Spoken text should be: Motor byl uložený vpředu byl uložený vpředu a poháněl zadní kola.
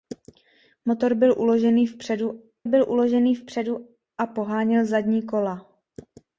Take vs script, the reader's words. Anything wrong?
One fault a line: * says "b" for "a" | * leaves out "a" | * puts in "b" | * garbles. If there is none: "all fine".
all fine